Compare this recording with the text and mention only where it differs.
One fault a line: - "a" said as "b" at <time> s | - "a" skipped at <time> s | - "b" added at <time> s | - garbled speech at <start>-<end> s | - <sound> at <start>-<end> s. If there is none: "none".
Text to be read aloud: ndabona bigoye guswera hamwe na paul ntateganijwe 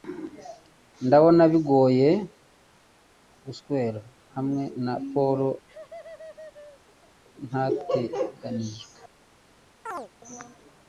- laugh at 5.7-7.2 s
- chirp at 9.9-10.1 s